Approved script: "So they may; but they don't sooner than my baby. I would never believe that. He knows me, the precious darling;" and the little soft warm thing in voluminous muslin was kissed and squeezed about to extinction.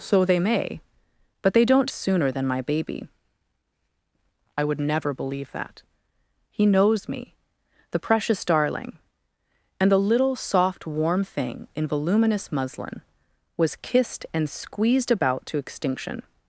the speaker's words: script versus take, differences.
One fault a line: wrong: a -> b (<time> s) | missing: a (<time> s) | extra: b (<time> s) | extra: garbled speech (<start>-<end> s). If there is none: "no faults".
no faults